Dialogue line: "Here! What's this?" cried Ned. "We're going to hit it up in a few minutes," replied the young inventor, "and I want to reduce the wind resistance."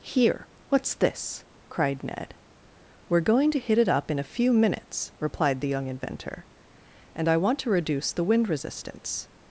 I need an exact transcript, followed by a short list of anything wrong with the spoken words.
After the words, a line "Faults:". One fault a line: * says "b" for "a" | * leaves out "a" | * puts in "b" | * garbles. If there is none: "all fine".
"Here! What's this?" cried Ned. "We're going to hit it up in a few minutes," replied the young inventor, "and I want to reduce the wind resistance."
Faults:
all fine